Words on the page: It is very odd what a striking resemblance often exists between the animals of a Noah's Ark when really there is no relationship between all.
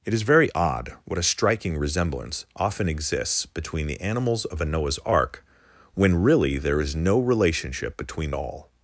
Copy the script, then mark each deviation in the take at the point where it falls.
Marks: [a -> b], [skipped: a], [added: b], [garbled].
It is very odd what a striking resemblance often exists between the animals of a Noah's Ark when really there is no relationship between all.